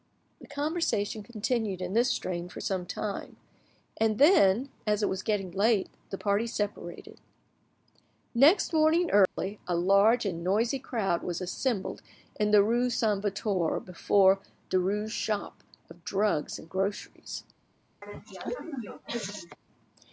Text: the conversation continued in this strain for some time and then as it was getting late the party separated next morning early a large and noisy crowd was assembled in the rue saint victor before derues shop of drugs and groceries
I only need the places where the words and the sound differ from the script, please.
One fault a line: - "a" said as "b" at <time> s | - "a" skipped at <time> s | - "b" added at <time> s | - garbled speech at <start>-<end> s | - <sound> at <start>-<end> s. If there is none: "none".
- dropout at 9.3-9.4 s
- cough at 18.0-19.6 s